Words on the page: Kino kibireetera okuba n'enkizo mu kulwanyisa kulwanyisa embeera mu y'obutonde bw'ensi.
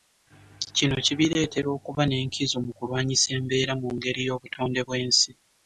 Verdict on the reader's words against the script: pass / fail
fail